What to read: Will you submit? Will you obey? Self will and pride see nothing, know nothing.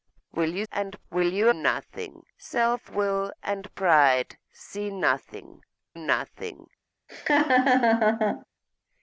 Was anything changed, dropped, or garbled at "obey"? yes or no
yes